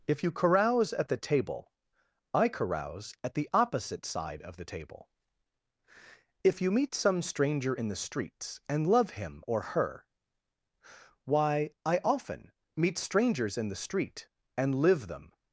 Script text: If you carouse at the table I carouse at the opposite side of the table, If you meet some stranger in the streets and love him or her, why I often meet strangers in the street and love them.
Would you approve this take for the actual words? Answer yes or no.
no